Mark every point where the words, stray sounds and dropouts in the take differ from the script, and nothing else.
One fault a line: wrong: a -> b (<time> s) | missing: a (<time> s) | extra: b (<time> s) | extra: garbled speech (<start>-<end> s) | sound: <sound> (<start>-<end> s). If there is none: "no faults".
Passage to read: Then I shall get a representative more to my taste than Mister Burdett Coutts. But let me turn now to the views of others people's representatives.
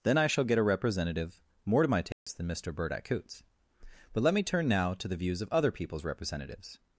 sound: dropout (2.1-2.3 s)
wrong: others -> other (5.5 s)